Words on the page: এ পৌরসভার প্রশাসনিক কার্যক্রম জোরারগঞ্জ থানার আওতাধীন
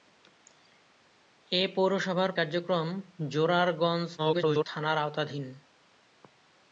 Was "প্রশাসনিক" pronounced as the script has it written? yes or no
no